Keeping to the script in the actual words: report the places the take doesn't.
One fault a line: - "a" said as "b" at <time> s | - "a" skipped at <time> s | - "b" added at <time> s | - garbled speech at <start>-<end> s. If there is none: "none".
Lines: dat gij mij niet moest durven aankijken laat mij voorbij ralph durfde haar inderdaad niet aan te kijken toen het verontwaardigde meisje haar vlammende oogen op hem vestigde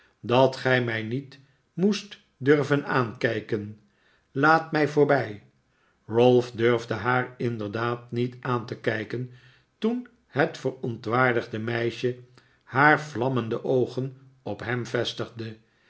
none